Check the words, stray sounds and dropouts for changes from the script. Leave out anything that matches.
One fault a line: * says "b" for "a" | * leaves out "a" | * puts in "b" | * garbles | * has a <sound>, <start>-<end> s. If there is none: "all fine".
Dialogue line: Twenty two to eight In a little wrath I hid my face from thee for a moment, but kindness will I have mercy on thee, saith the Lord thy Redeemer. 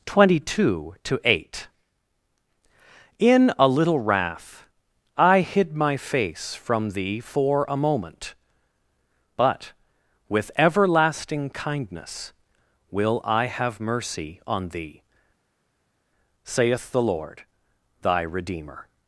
* puts in "with everlasting"